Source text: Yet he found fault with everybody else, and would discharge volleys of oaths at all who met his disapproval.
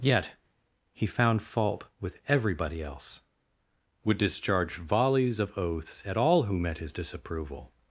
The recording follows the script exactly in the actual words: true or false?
false